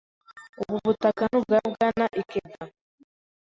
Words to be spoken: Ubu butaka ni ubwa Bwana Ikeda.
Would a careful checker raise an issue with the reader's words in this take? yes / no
no